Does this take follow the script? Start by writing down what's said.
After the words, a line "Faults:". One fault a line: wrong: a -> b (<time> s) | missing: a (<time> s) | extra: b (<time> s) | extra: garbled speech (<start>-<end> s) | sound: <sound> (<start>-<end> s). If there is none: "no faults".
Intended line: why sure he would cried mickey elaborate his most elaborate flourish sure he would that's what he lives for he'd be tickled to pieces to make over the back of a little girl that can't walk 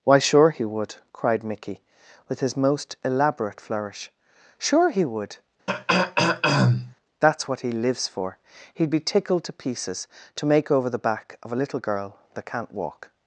why sure he would cried mickey with his most elaborate flourish sure he would that's what he lives for he'd be tickled to pieces to make over the back of a little girl that can't walk
Faults:
wrong: elaborate -> with (2.3 s)
sound: throat clearing (5.7-6.9 s)